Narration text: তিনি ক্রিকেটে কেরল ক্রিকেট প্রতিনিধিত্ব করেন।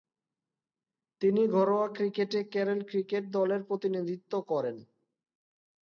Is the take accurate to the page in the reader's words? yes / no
no